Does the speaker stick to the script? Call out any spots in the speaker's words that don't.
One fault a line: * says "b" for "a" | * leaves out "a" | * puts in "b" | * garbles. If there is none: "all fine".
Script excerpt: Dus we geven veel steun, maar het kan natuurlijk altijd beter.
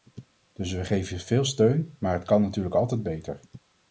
all fine